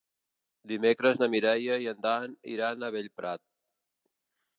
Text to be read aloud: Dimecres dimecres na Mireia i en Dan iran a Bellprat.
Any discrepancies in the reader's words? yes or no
yes